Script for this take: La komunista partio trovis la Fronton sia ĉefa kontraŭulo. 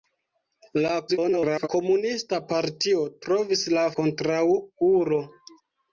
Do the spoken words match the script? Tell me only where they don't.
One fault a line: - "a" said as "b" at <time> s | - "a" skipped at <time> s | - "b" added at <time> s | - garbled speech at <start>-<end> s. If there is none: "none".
- garbled speech at 1.1-1.7 s
- "Fronton sia ĉefa" skipped at 3.8 s